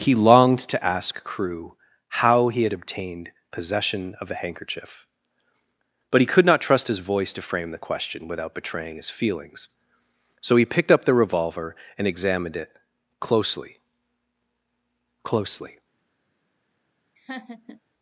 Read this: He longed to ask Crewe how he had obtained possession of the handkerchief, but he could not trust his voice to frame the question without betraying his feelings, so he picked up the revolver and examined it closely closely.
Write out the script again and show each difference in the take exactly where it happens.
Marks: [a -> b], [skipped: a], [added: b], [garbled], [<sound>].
He longed to ask Crewe how he had obtained possession of the handkerchief, but he could not trust his voice to frame the question without betraying his feelings, so he picked up the revolver and examined it closely closely. [laugh]